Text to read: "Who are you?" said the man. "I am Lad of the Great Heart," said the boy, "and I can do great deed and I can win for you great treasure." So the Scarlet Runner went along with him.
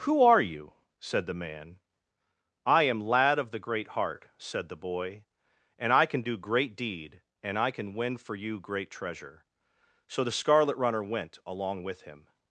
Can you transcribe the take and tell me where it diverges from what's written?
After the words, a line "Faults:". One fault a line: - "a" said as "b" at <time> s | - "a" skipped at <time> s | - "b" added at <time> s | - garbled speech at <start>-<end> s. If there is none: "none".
"Who are you?" said the man. "I am Lad of the Great Heart," said the boy, "and I can do great deed and I can win for you great treasure." So the Scarlet Runner went along with him.
Faults:
none